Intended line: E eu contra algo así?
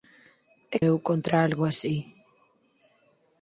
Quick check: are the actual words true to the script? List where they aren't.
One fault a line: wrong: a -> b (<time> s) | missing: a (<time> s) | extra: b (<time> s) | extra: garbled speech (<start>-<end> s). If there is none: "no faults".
no faults